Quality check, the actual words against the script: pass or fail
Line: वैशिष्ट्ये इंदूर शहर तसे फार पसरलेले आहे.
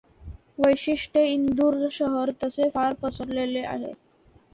pass